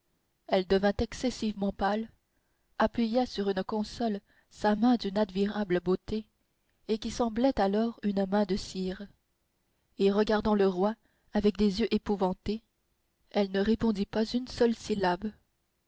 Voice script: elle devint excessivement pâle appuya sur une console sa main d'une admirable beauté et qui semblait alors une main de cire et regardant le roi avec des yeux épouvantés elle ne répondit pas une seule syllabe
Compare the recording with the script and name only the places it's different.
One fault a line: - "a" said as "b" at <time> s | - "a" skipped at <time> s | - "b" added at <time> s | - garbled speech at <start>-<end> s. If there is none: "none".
none